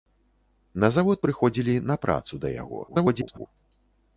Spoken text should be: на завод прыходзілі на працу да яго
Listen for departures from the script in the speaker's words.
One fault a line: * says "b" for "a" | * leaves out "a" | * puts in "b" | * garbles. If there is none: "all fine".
* garbles